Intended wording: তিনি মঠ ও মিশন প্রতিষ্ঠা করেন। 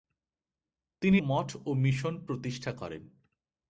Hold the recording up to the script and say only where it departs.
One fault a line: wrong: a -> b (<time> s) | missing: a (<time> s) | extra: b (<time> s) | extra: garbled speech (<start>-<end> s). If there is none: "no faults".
no faults